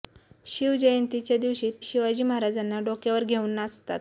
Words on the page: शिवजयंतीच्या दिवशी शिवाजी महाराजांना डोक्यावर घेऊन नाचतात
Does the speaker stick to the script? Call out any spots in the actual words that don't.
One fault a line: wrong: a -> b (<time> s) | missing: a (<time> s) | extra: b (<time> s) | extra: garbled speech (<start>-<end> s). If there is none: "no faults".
no faults